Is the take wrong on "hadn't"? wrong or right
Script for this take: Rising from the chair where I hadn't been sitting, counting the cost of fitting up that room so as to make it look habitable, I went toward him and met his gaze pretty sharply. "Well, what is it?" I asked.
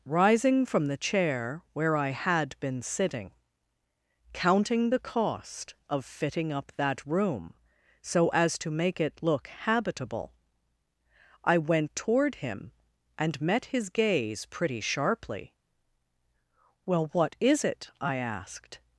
wrong